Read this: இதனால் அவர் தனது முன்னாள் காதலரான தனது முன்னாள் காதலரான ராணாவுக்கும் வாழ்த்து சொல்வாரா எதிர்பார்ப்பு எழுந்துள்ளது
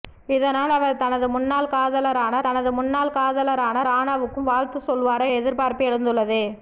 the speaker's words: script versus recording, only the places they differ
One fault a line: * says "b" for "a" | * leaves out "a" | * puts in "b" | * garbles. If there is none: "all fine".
all fine